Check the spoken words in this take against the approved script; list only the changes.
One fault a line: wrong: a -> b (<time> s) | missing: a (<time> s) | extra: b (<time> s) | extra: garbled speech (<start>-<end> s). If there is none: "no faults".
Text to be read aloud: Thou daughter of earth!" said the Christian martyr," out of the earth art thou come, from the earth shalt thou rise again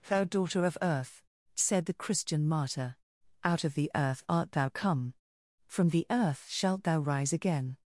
no faults